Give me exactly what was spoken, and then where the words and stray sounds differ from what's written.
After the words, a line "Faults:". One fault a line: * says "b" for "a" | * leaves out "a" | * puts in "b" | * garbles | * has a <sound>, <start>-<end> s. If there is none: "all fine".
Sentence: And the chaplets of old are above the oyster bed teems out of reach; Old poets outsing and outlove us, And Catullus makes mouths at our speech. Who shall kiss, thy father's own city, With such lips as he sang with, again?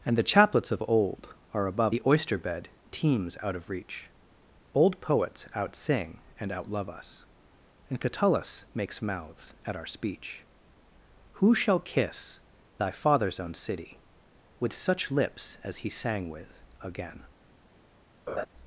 And the chaplets of old are above the oyster bed teems out of reach; Old poets outsing and outlove us, And Catullus makes mouths at our speech. Who shall kiss, thy father's own city, With such lips as he sang with, again?
Faults:
* has a laugh, 18.3-18.5 s